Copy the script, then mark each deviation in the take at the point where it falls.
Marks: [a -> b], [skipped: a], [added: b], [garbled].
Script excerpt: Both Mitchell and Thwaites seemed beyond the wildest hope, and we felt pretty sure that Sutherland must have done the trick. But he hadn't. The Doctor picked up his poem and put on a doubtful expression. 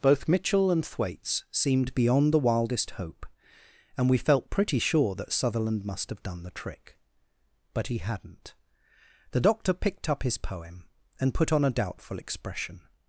Both Mitchell and Thwaites seemed beyond the wildest hope, and we felt pretty sure that Sutherland must have done the trick. But he hadn't. The Doctor picked up his poem and put on a doubtful expression.